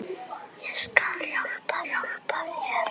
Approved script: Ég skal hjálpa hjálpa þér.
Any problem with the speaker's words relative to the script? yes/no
no